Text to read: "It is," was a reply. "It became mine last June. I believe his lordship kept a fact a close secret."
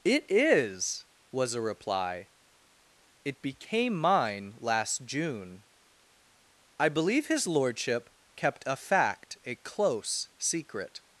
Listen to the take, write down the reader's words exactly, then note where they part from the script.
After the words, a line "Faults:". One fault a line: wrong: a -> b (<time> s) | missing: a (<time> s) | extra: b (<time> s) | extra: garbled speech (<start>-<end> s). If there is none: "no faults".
"It is," was a reply. "It became mine last June. I believe his lordship kept a fact a close secret."
Faults:
no faults